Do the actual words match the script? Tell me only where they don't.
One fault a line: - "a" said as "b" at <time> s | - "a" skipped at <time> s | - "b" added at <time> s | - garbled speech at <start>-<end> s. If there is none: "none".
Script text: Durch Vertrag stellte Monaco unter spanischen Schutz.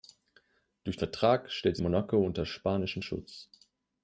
none